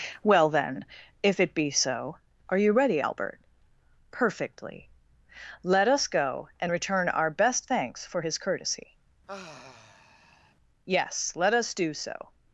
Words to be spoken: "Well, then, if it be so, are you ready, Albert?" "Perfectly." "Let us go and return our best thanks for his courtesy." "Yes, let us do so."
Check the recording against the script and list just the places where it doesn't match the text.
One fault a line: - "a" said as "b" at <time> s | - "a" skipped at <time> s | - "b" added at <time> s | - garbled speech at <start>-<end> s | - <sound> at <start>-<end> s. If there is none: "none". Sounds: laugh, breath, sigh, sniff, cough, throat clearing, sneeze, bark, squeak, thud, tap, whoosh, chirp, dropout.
- sigh at 9.3-10.5 s